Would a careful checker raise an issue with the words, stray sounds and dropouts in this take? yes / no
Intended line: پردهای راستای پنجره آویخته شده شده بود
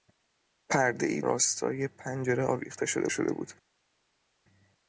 no